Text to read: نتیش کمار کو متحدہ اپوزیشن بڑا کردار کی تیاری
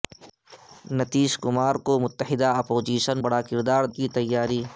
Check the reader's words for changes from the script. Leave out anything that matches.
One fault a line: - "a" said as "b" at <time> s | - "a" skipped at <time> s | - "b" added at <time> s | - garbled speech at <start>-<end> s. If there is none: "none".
none